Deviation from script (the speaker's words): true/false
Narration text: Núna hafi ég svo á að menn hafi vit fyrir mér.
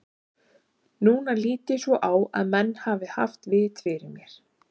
true